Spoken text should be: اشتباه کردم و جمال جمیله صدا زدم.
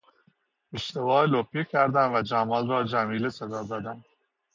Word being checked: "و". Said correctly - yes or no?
yes